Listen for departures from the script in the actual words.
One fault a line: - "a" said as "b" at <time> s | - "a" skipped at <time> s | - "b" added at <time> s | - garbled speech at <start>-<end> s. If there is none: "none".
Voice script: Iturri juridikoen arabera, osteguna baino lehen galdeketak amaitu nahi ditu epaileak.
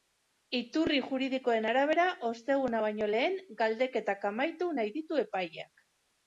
none